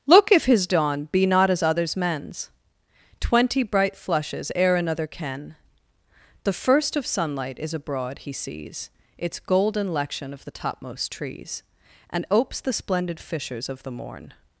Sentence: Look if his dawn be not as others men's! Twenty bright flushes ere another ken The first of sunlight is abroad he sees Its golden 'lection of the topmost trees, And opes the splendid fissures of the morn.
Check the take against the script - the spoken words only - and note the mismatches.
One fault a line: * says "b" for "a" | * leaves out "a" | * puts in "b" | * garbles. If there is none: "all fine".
all fine